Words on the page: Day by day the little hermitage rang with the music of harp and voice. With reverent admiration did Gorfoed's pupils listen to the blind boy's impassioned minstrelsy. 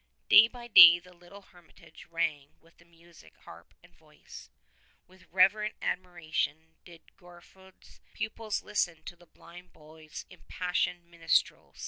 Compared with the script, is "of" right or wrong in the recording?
wrong